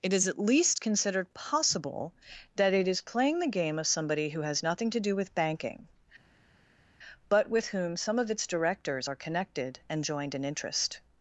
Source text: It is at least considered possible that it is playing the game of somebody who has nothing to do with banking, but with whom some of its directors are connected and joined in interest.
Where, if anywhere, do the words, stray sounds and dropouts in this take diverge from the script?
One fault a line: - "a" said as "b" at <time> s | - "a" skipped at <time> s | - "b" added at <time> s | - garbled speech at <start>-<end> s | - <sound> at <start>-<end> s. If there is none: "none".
none